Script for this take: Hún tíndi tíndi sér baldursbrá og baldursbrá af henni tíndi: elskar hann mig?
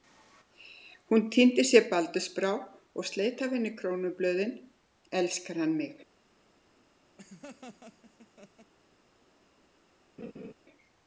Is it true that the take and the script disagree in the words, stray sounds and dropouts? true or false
true